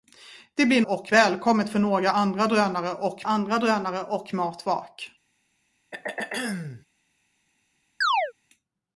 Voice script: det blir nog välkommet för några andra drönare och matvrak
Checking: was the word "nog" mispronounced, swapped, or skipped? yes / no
yes